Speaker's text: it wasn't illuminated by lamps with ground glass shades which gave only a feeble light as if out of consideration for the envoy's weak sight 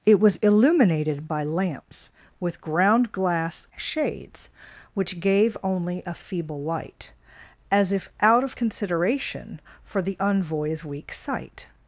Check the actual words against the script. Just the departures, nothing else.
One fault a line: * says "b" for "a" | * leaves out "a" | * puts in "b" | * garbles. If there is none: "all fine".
* says "was" for "wasn't"